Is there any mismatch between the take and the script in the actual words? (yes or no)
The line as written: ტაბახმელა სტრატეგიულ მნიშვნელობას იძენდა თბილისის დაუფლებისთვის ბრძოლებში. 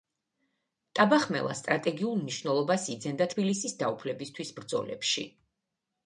no